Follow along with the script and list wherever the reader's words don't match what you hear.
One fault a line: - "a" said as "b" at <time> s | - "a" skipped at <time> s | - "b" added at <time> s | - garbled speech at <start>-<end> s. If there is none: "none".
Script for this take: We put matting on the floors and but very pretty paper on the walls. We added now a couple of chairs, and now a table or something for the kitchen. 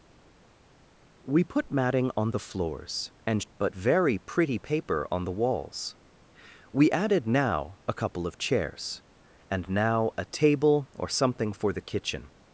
none